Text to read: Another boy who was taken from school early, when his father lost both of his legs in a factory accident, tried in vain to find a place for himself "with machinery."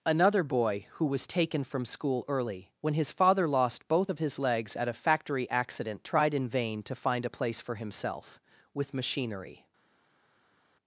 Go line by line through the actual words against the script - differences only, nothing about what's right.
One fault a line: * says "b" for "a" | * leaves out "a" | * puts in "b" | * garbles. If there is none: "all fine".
* says "at" for "in"